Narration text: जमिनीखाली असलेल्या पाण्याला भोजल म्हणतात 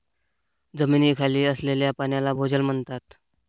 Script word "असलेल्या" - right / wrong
right